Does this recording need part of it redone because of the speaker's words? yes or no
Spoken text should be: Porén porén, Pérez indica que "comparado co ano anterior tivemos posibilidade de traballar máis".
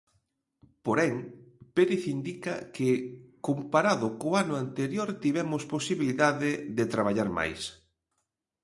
yes